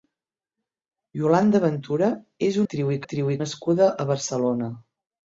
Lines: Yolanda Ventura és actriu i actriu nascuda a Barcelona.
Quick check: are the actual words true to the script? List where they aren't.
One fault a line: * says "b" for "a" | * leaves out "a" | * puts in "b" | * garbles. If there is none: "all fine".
all fine